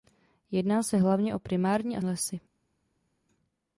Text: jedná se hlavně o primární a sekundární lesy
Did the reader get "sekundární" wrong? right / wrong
wrong